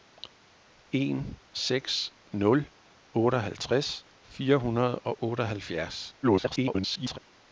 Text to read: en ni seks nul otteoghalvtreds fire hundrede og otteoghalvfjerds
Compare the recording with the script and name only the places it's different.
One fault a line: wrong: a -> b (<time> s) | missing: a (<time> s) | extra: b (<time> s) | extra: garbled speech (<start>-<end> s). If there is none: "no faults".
missing: ni (1.4 s)
extra: garbled speech (6.2-7.2 s)